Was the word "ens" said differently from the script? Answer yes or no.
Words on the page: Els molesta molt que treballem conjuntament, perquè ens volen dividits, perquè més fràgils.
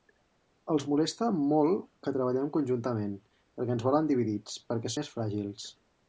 no